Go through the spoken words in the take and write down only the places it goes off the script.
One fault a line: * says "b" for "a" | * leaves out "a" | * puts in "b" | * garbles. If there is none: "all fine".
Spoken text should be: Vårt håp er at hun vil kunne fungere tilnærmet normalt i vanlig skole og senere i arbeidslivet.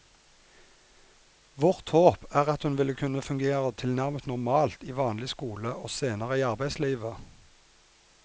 all fine